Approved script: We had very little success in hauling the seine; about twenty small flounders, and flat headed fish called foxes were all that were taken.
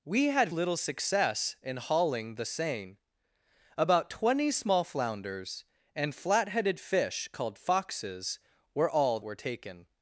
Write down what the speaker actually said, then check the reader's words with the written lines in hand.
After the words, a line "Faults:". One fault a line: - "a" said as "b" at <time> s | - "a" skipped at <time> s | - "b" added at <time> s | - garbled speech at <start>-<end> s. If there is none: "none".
We had little success in hauling the seine; about twenty small flounders, and flat headed fish called foxes were all were taken.
Faults:
- "very" skipped at 0.5 s
- "that" skipped at 9.2 s